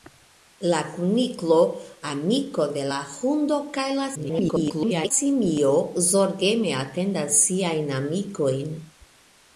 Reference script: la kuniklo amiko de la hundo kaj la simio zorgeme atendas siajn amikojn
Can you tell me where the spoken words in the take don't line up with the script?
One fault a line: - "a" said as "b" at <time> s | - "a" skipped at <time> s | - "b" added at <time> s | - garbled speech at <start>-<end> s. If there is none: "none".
- garbled speech at 4.1-5.1 s